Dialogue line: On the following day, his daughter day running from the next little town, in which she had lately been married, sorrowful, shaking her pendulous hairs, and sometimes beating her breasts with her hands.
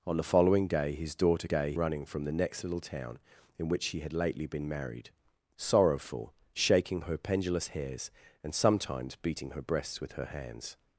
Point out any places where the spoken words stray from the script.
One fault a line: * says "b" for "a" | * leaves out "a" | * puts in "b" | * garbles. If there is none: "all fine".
all fine